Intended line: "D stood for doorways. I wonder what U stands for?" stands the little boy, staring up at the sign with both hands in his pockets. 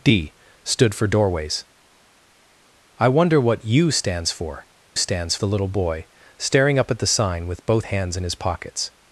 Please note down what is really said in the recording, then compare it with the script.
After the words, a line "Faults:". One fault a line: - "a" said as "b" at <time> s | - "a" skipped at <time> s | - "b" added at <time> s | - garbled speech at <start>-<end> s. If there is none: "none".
"D stood for doorways. I wonder what U stands for?" stands the little boy, staring up at the sign with both hands in his pockets.
Faults:
none